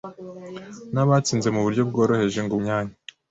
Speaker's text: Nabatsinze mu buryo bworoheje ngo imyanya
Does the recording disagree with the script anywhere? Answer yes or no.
no